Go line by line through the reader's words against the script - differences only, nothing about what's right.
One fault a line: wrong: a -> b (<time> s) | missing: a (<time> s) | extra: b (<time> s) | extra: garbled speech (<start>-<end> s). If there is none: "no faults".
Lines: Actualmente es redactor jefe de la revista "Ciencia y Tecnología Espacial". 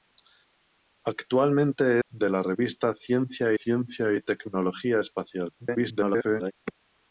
missing: es redactor jefe (2.0 s)
extra: ciencia (3.5 s)
extra: garbled speech (5.6-6.5 s)